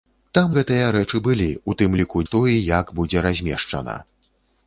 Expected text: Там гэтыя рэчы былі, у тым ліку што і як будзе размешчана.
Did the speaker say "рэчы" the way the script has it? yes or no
yes